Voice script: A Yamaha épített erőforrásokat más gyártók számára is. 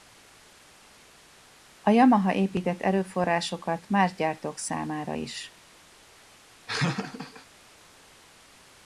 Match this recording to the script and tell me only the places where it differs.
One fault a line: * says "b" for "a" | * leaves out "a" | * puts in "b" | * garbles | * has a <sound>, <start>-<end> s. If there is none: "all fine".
* has a laugh, 6.7-7.5 s